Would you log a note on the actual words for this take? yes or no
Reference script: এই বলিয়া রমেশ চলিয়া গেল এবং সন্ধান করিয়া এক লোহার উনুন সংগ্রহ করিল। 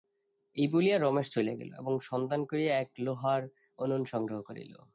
no